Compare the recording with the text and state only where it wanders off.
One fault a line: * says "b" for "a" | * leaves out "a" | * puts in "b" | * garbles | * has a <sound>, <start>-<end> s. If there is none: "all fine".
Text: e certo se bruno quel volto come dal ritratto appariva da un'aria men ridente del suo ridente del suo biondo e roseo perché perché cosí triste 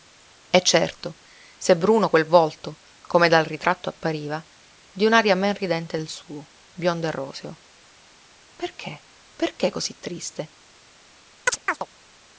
* says "di" for "da"
* leaves out "ridente del suo"
* has a chirp, 11.5-11.9 s